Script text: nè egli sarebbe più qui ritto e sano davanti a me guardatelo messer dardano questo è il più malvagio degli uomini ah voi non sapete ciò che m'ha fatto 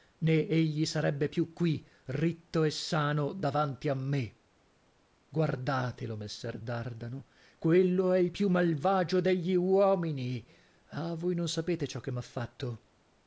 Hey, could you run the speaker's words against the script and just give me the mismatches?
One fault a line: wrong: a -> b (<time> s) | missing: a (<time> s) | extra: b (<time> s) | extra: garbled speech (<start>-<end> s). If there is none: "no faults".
wrong: questo -> quello (7.6 s)